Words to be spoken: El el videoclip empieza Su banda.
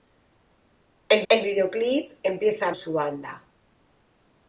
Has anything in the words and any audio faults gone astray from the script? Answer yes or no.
no